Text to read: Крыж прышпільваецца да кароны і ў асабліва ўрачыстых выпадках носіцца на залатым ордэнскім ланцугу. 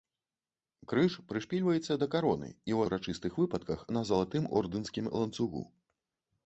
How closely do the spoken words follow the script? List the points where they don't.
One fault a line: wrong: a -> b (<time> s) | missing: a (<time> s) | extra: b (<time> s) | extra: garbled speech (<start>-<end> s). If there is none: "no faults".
missing: асабліва (2.8 s)
missing: носіцца (3.9 s)